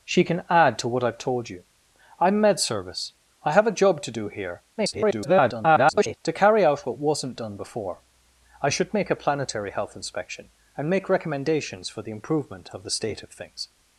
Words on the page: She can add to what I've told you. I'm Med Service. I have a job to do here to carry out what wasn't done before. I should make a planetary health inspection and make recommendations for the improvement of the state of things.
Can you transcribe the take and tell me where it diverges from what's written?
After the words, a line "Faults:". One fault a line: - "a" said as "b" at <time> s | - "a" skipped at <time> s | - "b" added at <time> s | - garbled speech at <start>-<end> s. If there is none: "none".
She can add to what I've told you. I'm Med Service. I have a job to do here [garbled] to carry out what wasn't done before. I should make a planetary health inspection and make recommendations for the improvement of the state of things.
Faults:
- garbled speech at 4.8-6.2 s